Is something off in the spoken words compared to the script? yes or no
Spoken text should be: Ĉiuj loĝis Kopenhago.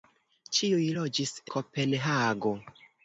no